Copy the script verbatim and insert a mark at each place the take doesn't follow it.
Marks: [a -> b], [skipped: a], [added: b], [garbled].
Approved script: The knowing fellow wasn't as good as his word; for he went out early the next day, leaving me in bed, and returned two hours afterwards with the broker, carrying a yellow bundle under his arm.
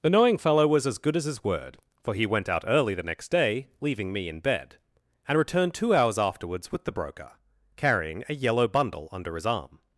The knowing fellow [wasn't -> was] as good as his word; for he went out early the next day, leaving me in bed, and returned two hours afterwards with the broker, carrying a yellow bundle under his arm.